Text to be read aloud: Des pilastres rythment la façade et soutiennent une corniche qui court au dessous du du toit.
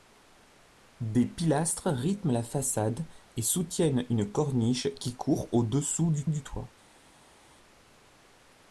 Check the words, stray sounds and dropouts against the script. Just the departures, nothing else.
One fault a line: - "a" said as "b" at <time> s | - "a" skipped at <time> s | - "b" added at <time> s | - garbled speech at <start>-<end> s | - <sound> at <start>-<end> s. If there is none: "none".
none